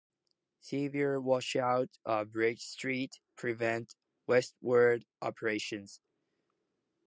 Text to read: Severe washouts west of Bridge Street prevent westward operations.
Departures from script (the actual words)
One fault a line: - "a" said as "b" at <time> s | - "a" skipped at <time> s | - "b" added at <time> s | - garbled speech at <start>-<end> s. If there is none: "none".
- "west" skipped at 2.0 s